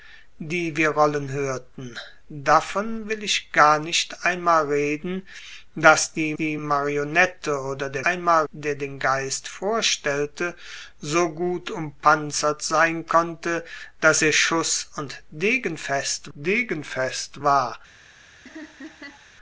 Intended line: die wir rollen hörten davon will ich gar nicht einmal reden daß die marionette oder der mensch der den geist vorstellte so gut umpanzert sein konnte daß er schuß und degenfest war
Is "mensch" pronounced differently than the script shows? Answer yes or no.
yes